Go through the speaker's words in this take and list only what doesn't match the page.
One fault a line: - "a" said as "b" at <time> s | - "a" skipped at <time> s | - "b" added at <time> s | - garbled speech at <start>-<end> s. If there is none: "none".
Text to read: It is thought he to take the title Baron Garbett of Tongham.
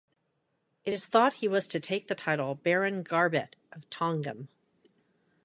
- "was" added at 1.5 s